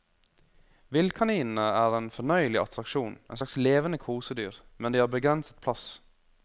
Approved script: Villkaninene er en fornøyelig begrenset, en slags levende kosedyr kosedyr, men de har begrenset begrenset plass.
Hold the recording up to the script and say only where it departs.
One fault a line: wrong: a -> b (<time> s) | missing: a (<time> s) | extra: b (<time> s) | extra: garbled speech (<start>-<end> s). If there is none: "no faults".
wrong: begrenset -> attraksjon (2.6 s)
missing: kosedyr (4.6 s)
missing: begrenset (5.6 s)